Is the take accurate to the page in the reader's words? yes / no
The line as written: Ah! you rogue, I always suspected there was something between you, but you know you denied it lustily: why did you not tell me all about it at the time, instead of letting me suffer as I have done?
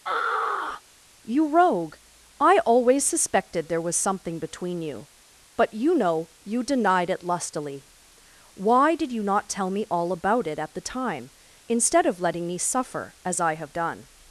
yes